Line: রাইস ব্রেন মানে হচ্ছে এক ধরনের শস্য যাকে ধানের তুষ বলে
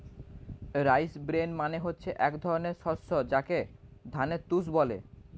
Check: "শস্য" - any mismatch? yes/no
no